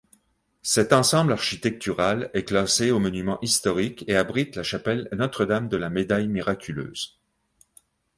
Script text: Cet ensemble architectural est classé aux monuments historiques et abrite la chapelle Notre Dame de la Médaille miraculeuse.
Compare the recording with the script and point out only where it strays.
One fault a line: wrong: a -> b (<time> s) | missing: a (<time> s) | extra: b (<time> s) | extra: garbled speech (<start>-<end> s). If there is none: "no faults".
no faults